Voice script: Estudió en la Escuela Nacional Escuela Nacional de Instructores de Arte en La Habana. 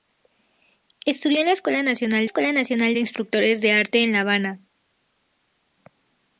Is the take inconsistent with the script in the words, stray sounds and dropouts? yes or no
no